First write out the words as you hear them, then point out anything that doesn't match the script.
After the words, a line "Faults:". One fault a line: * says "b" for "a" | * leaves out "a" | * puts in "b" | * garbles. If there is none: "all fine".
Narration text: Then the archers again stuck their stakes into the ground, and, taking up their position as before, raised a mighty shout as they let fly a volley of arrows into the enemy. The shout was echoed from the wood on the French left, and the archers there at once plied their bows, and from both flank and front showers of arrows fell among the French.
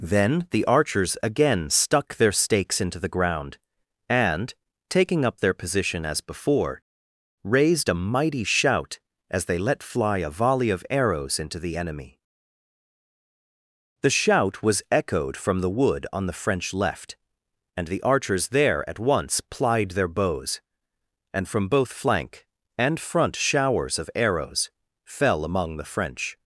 Then the archers again stuck their stakes into the ground, and, taking up their position as before, raised a mighty shout as they let fly a volley of arrows into the enemy. The shout was echoed from the wood on the French left, and the archers there at once plied their bows, and from both flank and front showers of arrows fell among the French.
Faults:
all fine